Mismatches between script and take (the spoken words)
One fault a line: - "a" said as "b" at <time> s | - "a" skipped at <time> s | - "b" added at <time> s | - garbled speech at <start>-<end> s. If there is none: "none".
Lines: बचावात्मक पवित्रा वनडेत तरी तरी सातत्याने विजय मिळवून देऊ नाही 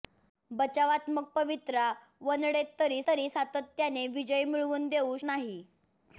none